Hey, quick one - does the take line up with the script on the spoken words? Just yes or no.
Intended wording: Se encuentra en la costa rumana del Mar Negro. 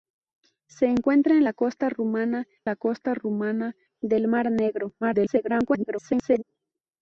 no